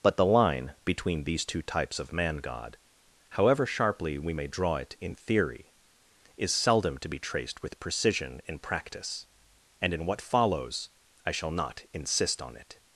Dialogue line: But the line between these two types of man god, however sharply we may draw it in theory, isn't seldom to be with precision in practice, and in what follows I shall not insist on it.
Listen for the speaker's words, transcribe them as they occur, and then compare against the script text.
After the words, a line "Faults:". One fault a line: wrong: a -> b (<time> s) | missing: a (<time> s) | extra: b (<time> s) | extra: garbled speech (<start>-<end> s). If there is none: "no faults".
But the line between these two types of man god, however sharply we may draw it in theory, is seldom to be traced with precision in practice, and in what follows I shall not insist on it.
Faults:
wrong: isn't -> is (6.4 s)
extra: traced (7.2 s)